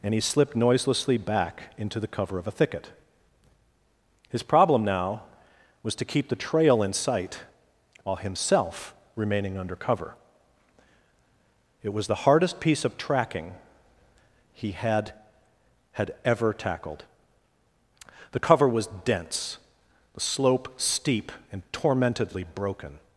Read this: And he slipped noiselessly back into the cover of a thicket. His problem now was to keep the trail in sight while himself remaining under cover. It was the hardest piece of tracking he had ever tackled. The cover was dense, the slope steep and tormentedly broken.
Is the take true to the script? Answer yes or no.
no